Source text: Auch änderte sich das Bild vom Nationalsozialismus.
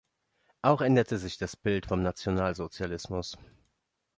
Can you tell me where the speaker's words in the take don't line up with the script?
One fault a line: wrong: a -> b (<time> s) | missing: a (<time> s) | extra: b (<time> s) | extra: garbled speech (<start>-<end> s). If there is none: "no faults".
no faults